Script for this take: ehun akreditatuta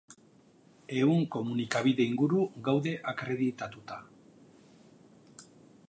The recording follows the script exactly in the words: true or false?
false